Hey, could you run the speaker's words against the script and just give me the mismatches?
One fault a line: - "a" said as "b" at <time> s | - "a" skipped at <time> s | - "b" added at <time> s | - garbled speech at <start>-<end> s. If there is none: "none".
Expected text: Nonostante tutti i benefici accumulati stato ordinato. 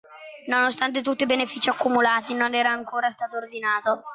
- "non era ancora" added at 2.3 s